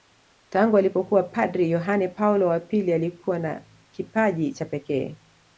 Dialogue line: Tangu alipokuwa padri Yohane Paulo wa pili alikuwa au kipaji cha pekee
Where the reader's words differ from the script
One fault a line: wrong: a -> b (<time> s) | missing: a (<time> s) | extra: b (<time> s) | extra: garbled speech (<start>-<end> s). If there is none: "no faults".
wrong: au -> na (3.4 s)